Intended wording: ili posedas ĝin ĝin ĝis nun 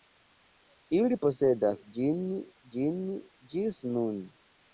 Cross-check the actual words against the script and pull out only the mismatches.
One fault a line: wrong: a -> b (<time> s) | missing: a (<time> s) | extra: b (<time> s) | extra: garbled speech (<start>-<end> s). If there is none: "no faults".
no faults